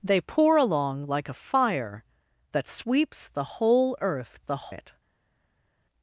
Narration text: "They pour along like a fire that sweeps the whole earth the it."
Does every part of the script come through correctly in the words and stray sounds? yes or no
yes